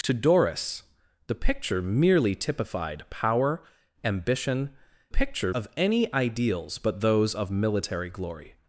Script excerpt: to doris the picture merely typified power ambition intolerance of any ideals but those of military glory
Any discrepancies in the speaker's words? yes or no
yes